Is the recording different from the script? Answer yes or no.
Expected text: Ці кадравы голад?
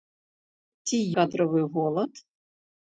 no